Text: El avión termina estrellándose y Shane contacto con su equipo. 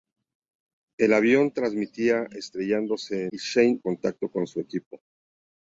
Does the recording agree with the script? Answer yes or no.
yes